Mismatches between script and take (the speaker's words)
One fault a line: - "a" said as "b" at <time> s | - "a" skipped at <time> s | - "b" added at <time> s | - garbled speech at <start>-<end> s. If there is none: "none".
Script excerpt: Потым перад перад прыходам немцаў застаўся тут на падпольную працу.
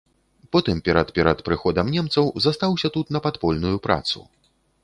none